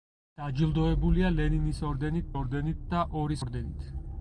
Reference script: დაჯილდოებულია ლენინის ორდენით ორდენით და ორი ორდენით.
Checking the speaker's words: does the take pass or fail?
pass